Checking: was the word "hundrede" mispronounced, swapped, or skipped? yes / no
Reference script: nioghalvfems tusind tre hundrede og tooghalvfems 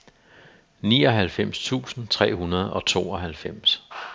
no